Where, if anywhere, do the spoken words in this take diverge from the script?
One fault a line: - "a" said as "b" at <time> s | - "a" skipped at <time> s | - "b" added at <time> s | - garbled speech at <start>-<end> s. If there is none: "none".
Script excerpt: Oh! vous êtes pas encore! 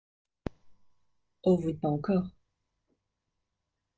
none